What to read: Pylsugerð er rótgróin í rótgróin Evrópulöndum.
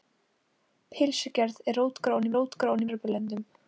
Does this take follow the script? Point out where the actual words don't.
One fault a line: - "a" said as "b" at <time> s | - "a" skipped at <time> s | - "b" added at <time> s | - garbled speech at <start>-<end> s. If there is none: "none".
none